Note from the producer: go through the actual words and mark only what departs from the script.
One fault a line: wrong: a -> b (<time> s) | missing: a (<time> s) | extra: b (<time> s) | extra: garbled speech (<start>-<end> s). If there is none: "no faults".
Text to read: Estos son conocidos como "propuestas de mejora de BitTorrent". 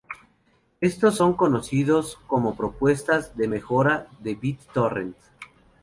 no faults